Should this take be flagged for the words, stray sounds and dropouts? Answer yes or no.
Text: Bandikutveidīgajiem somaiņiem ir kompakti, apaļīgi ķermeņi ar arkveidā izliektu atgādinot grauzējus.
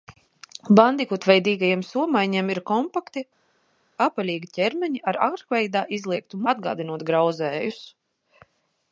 no